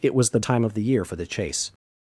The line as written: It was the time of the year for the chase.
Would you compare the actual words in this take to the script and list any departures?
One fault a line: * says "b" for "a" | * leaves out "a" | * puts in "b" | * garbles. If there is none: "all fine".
all fine